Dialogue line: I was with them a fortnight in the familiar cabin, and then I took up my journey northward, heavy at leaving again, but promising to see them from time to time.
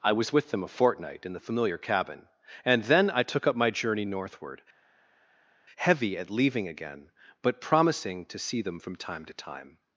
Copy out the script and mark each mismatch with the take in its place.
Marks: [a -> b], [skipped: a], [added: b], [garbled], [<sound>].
I was with them a fortnight in the familiar cabin, and then I took up my journey northward, heavy at leaving again, but promising to see them from time to time.